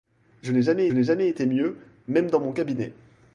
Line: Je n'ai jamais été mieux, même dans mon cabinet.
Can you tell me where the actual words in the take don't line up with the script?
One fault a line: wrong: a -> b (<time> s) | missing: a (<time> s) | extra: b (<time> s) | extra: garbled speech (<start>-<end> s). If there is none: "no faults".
extra: n'ai jamais (0.9 s)